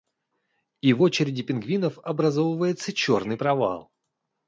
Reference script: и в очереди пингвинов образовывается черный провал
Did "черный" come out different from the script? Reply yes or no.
no